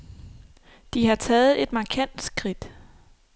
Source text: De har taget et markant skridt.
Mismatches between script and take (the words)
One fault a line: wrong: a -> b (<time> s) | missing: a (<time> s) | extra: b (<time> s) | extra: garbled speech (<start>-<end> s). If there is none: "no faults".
no faults